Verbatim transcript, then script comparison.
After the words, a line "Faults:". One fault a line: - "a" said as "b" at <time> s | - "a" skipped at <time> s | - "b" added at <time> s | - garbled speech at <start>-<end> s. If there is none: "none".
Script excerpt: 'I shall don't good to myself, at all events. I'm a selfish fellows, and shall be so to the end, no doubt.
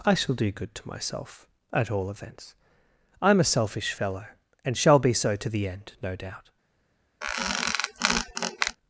'I shall do good to myself, at all events. I'm a selfish fellow, and shall be so to the end, no doubt.
Faults:
- "don't" said as "do" at 0.3 s
- "fellows" said as "fellow" at 3.9 s